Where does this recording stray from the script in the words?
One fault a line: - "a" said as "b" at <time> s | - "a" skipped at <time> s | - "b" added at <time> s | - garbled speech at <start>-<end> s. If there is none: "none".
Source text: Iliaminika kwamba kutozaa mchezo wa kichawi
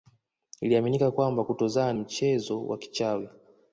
none